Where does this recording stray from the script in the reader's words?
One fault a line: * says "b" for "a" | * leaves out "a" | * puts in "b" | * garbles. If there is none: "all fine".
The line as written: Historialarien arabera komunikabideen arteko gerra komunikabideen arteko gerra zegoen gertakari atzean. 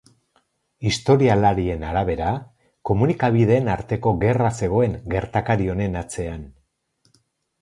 * leaves out "komunikabideen arteko gerra"
* puts in "honen"